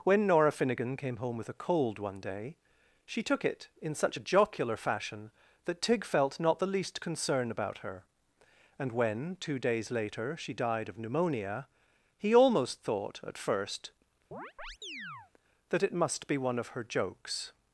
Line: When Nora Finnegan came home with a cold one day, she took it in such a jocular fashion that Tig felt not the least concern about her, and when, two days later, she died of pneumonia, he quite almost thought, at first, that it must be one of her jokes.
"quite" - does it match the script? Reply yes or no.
no